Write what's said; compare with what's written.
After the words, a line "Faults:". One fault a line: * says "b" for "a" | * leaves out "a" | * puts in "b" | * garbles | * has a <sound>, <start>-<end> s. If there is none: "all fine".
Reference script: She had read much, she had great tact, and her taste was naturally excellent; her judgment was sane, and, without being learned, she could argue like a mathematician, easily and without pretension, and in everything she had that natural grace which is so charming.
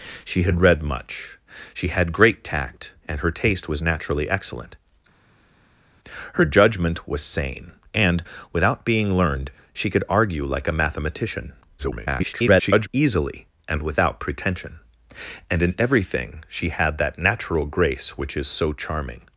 She had read much, she had great tact, and her taste was naturally excellent; her judgment was sane, and, without being learned, she could argue like a mathematician, [garbled] easily and without pretension, and in everything she had that natural grace which is so charming.
Faults:
* garbles